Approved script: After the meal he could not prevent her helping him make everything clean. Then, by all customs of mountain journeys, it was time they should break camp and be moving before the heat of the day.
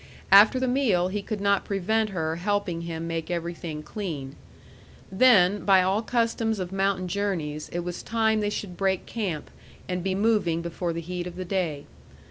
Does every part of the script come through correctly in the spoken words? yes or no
yes